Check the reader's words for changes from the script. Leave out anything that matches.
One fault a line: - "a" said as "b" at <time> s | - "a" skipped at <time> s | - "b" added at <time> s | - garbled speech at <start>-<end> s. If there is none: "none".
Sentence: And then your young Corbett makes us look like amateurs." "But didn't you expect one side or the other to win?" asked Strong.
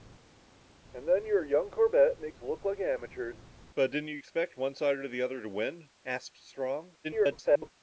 - "us" skipped at 2.4 s
- garbled speech at 7.0-7.7 s